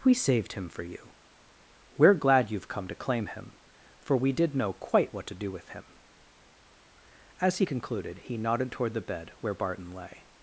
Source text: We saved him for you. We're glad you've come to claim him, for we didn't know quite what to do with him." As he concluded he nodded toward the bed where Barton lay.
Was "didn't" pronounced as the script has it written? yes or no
no